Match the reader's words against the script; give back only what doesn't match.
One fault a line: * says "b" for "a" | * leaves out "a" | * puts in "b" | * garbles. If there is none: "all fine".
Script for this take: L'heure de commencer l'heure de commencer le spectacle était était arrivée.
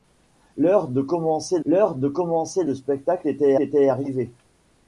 all fine